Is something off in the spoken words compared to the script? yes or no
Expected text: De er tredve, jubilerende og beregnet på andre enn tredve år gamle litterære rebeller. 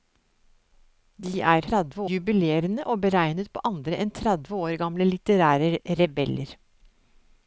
no